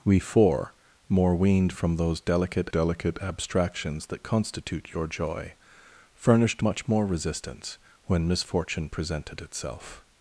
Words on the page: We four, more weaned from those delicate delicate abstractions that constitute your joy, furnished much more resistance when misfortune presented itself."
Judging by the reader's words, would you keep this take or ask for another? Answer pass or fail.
pass